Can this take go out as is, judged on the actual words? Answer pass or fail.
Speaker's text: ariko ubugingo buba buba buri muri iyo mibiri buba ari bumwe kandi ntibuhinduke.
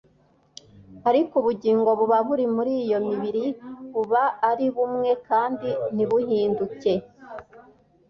fail